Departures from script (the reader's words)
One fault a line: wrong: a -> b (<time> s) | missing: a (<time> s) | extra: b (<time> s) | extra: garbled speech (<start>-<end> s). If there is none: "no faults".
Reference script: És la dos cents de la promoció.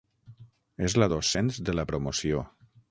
no faults